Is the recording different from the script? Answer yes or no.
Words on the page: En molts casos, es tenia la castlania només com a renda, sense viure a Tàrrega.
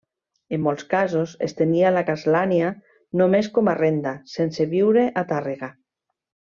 no